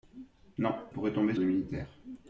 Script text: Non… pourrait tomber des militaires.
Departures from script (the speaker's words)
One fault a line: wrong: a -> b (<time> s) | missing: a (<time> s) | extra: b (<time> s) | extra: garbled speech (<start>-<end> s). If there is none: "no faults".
no faults